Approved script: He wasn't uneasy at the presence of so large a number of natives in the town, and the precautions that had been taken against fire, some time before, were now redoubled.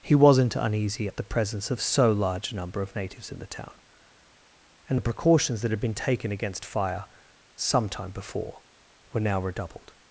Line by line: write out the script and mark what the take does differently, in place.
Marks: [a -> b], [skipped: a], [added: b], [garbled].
He wasn't uneasy at the presence of so large a number of natives in the town, and the precautions that had been taken against fire, some time before, were now redoubled.